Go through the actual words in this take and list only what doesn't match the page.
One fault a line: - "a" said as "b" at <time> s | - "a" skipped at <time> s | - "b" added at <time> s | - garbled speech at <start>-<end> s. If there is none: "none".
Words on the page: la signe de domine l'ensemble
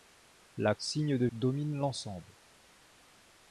none